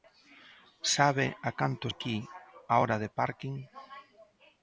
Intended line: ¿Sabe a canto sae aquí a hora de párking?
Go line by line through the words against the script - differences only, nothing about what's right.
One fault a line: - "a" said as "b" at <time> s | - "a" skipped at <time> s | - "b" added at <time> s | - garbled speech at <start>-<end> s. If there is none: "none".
- "sae" skipped at 1.9 s